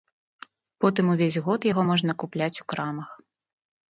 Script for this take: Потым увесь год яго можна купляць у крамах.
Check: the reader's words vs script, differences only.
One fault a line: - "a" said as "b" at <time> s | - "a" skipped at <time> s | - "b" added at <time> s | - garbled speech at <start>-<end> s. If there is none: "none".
none